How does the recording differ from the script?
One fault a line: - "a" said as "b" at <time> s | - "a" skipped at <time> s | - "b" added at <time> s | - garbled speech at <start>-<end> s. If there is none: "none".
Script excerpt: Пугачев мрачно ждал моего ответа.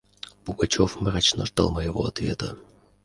none